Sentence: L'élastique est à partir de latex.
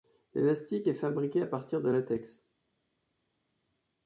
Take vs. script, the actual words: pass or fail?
fail